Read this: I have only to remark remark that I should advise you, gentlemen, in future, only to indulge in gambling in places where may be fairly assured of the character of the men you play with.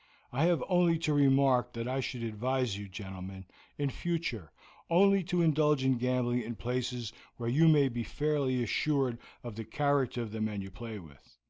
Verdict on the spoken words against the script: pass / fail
fail